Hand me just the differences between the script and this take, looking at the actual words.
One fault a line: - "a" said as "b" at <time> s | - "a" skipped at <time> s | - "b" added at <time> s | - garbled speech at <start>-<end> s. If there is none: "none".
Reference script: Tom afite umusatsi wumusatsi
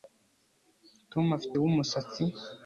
- "umusatsi" skipped at 1.6 s